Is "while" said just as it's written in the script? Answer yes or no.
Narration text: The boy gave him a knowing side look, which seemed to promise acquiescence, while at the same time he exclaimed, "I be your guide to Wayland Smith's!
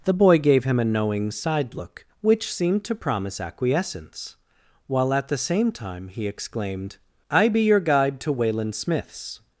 yes